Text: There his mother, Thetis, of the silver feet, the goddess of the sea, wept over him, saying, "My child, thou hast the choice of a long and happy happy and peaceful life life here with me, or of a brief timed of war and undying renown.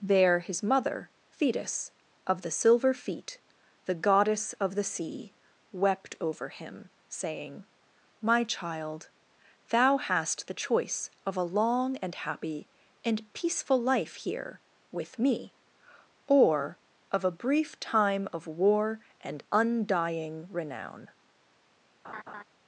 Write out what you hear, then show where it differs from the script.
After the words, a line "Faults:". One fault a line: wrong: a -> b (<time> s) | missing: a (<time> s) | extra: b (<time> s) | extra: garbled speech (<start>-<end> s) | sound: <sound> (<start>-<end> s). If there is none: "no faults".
There his mother, Thetis, of the silver feet, the goddess of the sea, wept over him, saying, "My child, thou hast the choice of a long and happy and peaceful life here with me, or of a brief time of war and undying renown.
Faults:
missing: happy (12.7 s)
missing: life (14.2 s)
wrong: timed -> time (17.8 s)
sound: laugh (22.0-22.4 s)